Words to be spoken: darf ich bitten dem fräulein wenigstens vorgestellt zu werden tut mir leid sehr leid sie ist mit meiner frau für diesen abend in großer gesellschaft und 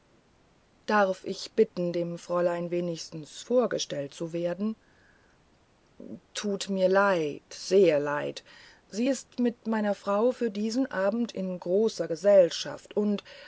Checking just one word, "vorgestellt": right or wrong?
right